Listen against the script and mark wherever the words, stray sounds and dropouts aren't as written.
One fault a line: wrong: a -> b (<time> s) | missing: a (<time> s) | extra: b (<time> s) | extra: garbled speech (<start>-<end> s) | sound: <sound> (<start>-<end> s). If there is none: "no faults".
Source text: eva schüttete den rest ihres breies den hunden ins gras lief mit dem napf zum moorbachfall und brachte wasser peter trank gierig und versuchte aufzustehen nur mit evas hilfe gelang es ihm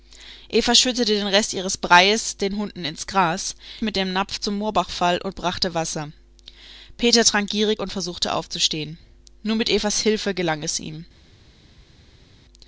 missing: lief (3.5 s)